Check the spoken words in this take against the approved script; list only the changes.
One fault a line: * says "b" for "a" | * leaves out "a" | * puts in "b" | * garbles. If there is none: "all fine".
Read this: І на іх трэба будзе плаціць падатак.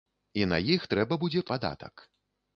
* leaves out "плаціць"